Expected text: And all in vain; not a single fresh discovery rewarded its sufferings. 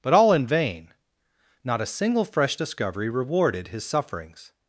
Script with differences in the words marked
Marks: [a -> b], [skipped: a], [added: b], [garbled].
[And -> But] all in vain; not a single fresh discovery rewarded [its -> his] sufferings.